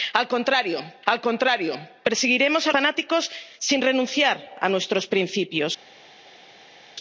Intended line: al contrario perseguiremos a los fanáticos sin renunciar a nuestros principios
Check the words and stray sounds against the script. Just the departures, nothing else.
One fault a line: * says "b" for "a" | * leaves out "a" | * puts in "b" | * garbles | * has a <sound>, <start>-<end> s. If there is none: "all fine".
* puts in "al contrario"
* leaves out "los"